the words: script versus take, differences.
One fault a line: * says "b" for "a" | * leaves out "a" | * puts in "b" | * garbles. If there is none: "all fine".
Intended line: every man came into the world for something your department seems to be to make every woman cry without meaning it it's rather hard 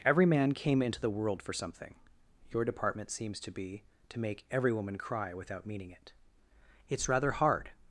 all fine